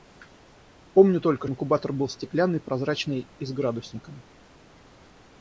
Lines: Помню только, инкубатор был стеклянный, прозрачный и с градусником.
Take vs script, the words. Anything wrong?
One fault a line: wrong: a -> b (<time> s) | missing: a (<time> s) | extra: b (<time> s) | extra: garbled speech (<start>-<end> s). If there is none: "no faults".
no faults